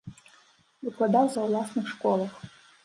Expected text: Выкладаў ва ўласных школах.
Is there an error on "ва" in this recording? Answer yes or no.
no